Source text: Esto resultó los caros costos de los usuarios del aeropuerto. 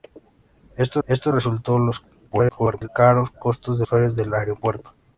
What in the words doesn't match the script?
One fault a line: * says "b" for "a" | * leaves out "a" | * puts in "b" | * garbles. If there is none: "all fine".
* puts in "esto"
* garbles
* leaves out "los"